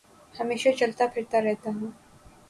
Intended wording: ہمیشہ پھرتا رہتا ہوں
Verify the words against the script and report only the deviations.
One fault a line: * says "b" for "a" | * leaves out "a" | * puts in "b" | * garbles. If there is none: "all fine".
* puts in "چلتا"